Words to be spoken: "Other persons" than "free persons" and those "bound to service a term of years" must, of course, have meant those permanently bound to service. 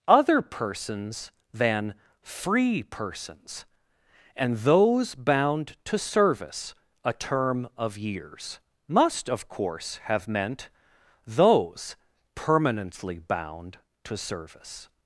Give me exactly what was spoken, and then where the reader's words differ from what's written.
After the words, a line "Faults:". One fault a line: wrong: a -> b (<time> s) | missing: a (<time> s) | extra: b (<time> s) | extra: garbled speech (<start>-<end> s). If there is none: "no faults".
"Other persons" than "free persons" and those "bound to service a term of years" must, of course, have meant those permanently bound to service.
Faults:
no faults